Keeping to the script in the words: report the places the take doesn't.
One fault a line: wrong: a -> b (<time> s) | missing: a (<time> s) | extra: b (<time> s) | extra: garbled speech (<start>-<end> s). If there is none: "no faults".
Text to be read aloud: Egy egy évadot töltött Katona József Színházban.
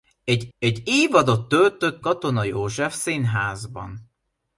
no faults